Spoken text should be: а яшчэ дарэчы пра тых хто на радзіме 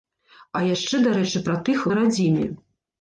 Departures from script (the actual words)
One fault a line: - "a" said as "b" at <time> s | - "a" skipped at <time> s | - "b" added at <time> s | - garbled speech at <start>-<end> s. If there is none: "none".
- "хто" skipped at 1.9 s